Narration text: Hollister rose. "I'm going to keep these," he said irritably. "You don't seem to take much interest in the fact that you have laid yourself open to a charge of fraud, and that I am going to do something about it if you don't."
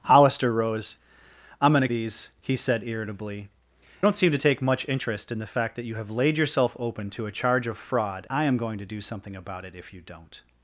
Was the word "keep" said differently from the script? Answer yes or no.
yes